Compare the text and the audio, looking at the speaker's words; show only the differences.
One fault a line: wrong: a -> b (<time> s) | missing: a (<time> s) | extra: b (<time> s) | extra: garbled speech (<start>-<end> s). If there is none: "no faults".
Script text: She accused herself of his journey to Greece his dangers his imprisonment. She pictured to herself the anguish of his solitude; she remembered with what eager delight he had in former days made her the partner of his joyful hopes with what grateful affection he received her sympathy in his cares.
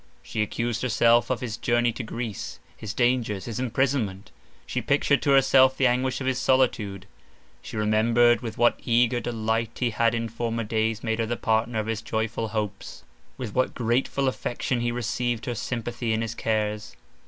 no faults